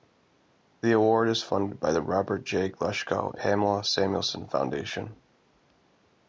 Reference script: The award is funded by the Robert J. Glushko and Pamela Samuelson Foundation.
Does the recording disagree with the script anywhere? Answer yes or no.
yes